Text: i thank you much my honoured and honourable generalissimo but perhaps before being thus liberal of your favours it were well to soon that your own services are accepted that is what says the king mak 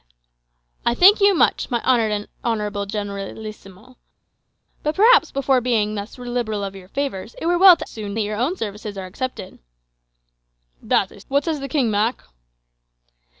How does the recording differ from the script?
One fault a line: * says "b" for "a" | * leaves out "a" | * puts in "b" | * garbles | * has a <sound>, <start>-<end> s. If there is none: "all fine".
all fine